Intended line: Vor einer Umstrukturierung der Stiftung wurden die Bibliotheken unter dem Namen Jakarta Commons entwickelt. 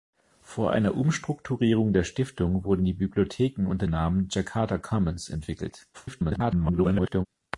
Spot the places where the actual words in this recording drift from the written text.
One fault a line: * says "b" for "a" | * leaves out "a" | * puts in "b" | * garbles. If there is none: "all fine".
* leaves out "dem"
* garbles